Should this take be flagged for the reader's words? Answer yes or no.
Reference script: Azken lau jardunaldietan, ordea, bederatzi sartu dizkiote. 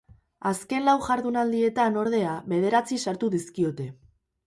no